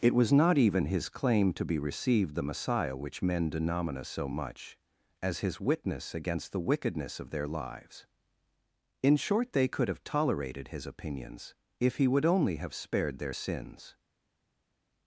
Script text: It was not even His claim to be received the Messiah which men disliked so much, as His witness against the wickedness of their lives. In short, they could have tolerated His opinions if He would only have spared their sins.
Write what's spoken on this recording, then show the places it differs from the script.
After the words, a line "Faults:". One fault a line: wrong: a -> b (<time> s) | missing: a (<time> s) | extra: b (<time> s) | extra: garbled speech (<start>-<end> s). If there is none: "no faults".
It was not even His claim to be received the Messiah which men denomina so much, as His witness against the wickedness of their lives. In short, they could have tolerated His opinions if He would only have spared their sins.
Faults:
wrong: disliked -> denomina (3.5 s)